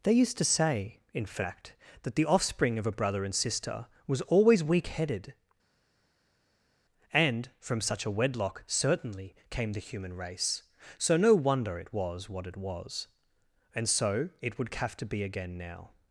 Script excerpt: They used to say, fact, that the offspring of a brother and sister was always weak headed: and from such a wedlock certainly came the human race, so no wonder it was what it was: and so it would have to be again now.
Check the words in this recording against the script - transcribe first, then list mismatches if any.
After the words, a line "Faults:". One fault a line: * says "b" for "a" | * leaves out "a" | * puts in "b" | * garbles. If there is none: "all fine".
They used to say, in fact, that the offspring of a brother and sister was always weak headed: and from such a wedlock certainly came the human race, so no wonder it was what it was: and so it would have to be again now.
Faults:
* puts in "in"